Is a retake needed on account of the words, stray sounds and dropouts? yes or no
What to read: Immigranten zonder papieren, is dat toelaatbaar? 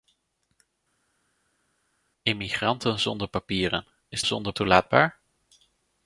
yes